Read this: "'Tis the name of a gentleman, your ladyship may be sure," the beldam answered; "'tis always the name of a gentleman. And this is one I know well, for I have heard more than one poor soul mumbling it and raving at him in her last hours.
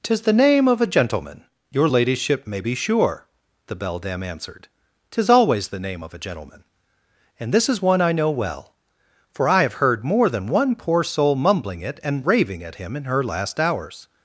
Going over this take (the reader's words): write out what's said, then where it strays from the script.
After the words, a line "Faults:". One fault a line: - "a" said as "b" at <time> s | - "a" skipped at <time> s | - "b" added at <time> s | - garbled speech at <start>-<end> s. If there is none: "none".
"'Tis the name of a gentleman, your ladyship may be sure," the beldam answered; "'tis always the name of a gentleman. And this is one I know well, for I have heard more than one poor soul mumbling it and raving at him in her last hours.
Faults:
none